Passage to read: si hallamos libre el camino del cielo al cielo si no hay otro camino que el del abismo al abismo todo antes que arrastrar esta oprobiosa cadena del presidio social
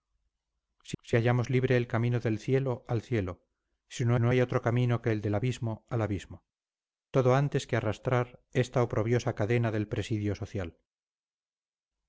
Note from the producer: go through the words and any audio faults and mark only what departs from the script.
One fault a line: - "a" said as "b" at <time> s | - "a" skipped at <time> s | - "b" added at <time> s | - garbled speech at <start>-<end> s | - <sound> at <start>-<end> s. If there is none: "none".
- "si" added at 1.0 s
- "no" added at 4.2 s